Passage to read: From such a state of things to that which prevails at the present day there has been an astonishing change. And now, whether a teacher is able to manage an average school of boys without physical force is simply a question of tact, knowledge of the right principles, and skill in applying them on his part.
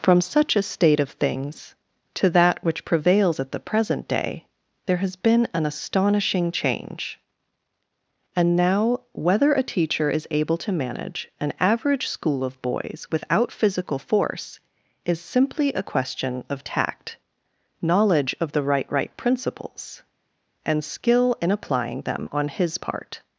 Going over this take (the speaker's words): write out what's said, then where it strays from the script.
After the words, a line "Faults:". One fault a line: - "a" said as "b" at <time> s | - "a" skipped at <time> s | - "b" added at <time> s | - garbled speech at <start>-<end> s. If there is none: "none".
From such a state of things to that which prevails at the present day there has been an astonishing change. And now, whether a teacher is able to manage an average school of boys without physical force is simply a question of tact, knowledge of the right right principles, and skill in applying them on his part.
Faults:
- "right" added at 18.9 s